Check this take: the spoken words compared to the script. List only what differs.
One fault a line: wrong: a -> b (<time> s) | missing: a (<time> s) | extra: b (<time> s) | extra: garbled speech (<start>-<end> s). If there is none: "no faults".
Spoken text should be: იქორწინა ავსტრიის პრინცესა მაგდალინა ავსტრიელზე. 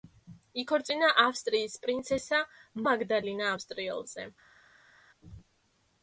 no faults